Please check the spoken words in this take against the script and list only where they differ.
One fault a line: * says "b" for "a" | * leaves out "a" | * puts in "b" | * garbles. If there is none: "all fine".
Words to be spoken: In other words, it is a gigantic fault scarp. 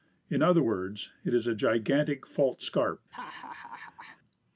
all fine